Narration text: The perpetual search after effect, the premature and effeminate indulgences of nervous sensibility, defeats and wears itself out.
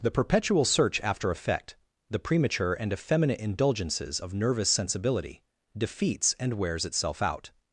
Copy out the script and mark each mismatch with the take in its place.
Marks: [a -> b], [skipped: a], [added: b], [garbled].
The perpetual search after effect, the premature and effeminate indulgences of nervous sensibility, defeats and wears itself out.